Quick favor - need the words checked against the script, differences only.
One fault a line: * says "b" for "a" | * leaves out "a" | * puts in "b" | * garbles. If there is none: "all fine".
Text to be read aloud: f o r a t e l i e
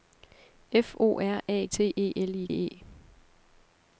all fine